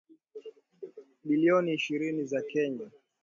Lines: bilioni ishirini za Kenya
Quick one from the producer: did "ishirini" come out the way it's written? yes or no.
yes